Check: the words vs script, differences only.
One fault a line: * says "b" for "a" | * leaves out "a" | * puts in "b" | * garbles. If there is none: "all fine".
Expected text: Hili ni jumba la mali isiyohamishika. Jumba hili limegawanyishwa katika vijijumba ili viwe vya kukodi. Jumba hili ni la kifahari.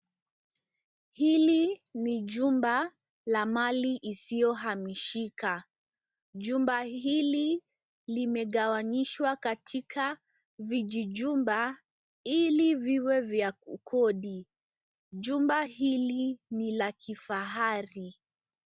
all fine